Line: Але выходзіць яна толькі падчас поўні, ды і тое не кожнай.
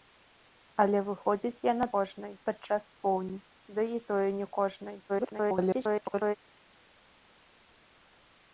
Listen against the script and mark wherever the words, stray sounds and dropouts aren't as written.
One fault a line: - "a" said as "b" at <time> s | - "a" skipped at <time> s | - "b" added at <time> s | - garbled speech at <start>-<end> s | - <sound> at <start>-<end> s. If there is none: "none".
- "толькі" said as "кожнай" at 2.0 s
- garbled speech at 5.1-6.4 s